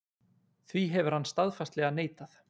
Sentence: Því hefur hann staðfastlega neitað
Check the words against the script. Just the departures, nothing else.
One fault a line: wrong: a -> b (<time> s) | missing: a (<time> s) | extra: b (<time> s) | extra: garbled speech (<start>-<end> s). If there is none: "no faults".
no faults